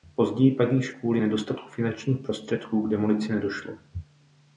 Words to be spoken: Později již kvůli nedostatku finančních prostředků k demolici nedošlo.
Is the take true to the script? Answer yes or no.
no